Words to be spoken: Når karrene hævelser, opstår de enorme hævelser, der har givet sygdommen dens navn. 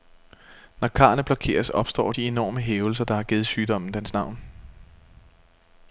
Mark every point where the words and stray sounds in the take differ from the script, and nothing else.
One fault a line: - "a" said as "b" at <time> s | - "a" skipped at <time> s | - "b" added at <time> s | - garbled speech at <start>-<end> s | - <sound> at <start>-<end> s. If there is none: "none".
- "hævelser" said as "blokeres" at 1.2 s